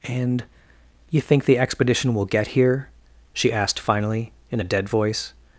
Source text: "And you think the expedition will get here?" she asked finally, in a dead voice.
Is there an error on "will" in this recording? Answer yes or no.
no